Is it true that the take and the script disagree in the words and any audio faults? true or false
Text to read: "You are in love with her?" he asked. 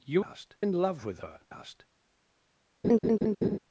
true